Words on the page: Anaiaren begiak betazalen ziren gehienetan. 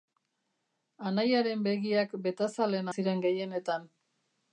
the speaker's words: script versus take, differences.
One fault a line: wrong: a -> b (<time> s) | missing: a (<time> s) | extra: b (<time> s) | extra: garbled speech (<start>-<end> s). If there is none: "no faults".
no faults